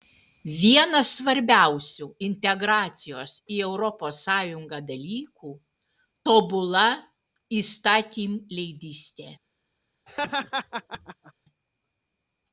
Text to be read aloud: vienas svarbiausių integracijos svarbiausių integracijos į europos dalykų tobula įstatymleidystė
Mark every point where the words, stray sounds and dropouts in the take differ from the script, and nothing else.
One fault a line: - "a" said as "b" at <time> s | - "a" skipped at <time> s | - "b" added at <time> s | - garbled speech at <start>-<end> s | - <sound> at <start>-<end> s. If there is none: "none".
- "svarbiausių integracijos" skipped at 3.3 s
- "sąjungą" added at 4.3 s
- laugh at 10.1-11.3 s